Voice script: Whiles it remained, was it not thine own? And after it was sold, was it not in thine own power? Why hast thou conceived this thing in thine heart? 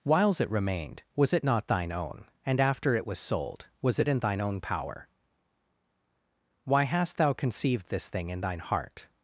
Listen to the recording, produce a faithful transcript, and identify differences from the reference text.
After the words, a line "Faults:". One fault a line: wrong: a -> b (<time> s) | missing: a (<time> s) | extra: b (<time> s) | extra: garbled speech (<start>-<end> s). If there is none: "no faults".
Whiles it remained, was it not thine own? And after it was sold, was it in thine own power? Why hast thou conceived this thing in thine heart?
Faults:
missing: not (4.1 s)